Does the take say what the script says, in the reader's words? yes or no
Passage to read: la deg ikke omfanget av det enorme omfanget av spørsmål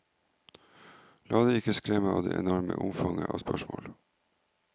no